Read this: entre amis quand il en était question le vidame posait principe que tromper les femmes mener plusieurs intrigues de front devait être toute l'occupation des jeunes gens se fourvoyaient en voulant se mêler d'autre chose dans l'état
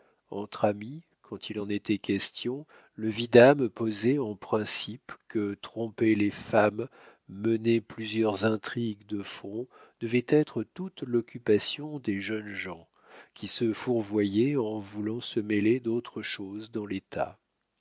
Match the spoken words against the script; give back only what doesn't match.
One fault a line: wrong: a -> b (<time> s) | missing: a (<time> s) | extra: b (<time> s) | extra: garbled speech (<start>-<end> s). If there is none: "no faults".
extra: en (4.2 s)
extra: qui (13.3 s)